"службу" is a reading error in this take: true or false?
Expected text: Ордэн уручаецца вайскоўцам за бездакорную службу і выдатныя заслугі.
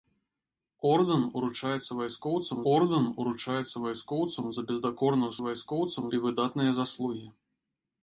true